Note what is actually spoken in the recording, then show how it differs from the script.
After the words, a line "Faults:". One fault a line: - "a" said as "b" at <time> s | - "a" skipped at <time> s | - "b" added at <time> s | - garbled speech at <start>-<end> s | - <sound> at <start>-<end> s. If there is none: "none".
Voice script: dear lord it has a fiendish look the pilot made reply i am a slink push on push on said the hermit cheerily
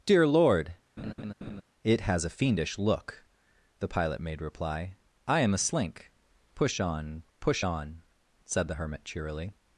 dear lord it has a fiendish look the pilot made reply i am a slink push on push on said the hermit cheerily
Faults:
- laugh at 1.0-1.6 s